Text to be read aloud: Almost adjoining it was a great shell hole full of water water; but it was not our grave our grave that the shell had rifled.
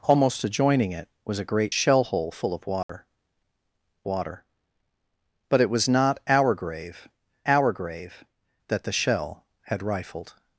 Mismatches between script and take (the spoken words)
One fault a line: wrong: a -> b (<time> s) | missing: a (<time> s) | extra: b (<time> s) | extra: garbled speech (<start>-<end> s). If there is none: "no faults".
no faults